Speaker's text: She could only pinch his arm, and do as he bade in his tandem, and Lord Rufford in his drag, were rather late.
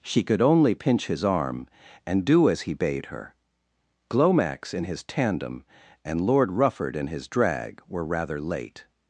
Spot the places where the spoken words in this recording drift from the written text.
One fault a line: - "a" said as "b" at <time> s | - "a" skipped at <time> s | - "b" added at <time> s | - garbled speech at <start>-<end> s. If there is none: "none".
- "her Glomax" added at 3.1 s